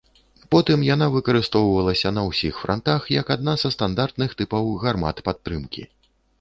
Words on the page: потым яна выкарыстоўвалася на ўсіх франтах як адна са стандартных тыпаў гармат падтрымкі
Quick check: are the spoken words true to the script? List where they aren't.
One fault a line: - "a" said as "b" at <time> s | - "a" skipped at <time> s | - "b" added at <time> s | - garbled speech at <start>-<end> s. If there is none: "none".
none